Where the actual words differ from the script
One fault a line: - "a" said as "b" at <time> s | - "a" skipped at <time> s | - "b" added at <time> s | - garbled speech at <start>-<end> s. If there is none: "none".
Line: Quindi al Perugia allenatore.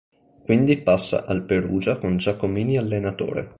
- "passa" added at 0.8 s
- "con Giacomini" added at 2.0 s